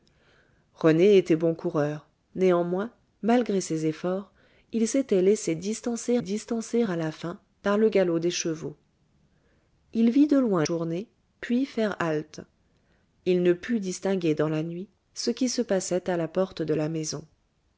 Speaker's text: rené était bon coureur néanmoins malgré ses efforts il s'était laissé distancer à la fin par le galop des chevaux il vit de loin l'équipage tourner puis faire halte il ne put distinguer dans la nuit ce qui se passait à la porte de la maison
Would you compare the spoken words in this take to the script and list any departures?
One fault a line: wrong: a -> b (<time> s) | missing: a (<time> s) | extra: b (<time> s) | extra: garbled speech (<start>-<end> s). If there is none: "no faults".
extra: distancer (6.2 s)
missing: l'équipage (10.7 s)